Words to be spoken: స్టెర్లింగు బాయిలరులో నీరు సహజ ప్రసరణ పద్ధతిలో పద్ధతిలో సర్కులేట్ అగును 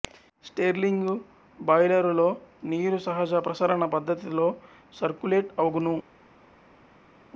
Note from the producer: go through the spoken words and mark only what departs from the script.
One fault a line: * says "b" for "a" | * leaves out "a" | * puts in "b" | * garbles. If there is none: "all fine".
* leaves out "పద్ధతిలో"